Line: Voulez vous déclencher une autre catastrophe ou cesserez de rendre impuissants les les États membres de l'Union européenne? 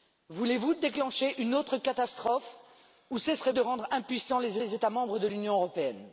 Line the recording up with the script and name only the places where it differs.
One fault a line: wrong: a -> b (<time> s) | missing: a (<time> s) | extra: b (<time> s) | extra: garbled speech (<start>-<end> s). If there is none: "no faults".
no faults